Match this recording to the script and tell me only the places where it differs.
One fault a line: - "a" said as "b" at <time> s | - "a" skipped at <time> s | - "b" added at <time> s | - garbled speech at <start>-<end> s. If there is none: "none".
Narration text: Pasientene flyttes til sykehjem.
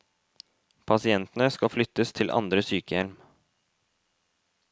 - "skal" added at 1.6 s
- "andre" added at 2.3 s